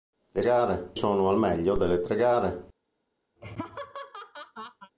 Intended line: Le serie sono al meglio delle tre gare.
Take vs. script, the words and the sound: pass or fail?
fail